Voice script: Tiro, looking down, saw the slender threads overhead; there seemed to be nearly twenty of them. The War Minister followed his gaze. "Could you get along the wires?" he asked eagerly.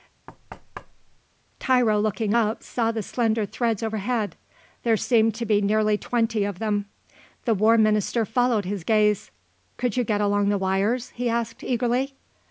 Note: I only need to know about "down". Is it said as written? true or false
false